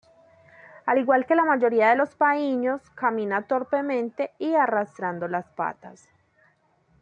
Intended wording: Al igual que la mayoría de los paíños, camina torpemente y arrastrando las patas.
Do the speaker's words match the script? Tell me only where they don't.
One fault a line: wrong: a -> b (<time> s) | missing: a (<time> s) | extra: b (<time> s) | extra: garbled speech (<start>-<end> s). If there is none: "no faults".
no faults